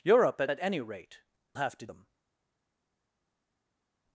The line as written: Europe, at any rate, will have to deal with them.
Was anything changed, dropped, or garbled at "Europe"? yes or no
no